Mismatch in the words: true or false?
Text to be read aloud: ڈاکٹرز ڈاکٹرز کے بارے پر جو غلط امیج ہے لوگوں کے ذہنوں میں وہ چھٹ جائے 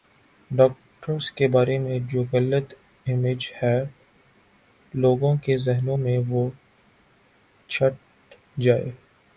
true